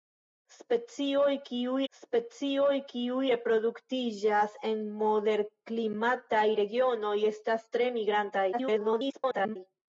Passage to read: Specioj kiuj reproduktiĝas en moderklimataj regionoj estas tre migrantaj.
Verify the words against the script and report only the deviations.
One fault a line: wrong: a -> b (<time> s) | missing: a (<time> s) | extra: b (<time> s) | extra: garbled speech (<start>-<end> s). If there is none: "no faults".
extra: specioj kiuj (1.9 s)
extra: garbled speech (8.5-9.6 s)